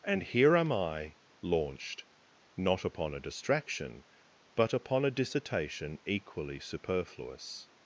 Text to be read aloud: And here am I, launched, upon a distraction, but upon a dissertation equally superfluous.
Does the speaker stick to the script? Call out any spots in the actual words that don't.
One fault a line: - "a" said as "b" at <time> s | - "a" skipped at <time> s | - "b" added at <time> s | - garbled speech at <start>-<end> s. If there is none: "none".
- "not" added at 2.6 s